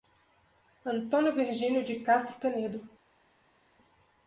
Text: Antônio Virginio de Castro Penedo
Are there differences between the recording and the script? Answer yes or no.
no